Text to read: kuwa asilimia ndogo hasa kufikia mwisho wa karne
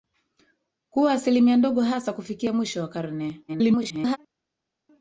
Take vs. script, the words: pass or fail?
fail